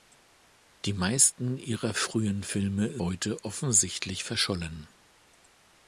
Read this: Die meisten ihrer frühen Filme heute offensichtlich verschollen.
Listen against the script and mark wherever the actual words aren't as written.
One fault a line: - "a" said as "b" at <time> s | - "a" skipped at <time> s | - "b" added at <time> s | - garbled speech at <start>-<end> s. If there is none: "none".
none